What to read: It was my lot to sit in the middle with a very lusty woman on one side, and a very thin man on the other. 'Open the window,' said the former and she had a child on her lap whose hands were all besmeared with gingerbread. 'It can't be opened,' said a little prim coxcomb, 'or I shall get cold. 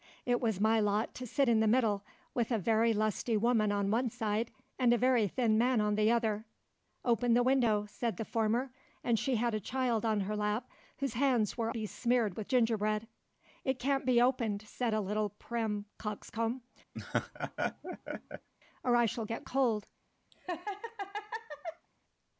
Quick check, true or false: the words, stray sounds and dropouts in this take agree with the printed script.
false